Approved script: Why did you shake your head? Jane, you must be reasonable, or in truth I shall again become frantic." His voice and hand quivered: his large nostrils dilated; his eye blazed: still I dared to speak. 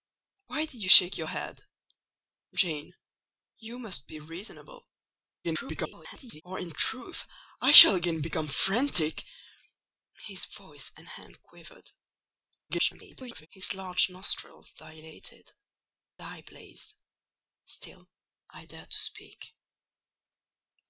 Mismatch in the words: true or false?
true